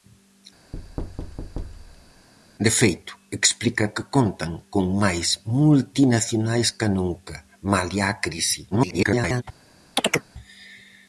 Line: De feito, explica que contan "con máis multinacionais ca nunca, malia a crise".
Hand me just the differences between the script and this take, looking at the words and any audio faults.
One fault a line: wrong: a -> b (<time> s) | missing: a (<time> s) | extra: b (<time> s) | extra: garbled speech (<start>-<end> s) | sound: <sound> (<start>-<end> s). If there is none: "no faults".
sound: thud (0.7-2.3 s)
extra: garbled speech (8.7-9.4 s)
sound: chirp (10.0-10.3 s)